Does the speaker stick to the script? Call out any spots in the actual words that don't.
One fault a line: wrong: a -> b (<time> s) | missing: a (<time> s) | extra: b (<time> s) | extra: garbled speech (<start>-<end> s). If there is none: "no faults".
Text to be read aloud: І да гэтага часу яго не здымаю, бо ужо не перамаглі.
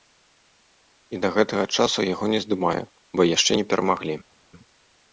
wrong: ужо -> яшчэ (3.4 s)